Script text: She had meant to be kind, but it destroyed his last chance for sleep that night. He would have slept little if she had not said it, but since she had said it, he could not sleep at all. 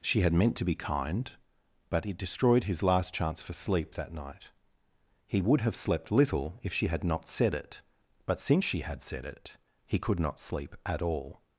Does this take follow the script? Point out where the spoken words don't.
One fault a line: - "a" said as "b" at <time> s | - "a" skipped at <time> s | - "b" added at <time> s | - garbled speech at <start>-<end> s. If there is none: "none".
none